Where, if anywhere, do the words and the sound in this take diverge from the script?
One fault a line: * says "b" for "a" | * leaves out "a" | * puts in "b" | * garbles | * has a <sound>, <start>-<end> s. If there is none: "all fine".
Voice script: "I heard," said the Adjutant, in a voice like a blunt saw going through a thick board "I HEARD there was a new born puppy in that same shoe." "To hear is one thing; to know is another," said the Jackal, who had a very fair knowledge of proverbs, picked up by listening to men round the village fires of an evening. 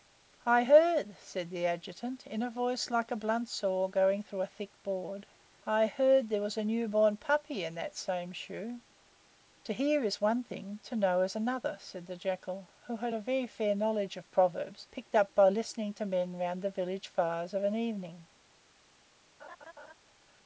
* has a laugh, 19.4-19.9 s